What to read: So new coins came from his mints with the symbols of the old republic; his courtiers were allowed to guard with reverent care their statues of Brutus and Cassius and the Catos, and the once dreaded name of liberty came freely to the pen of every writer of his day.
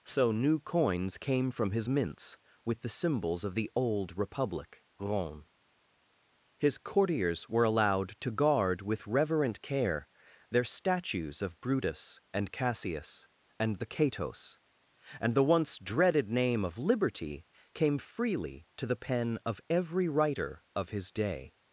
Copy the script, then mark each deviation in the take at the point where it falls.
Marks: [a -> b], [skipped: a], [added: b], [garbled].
So new coins came from his mints with the symbols of the old republic; [added: rome] his courtiers were allowed to guard with reverent care their statues of Brutus and Cassius and the Catos, and the once dreaded name of liberty came freely to the pen of every writer of his day.